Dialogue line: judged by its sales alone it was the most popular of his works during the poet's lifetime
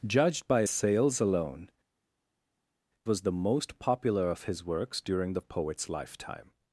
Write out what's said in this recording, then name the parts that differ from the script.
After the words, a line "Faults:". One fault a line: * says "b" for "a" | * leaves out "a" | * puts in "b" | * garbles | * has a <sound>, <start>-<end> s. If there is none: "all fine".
judged by sales alone was the most popular of his works during the poet's lifetime
Faults:
* leaves out "its"
* leaves out "it"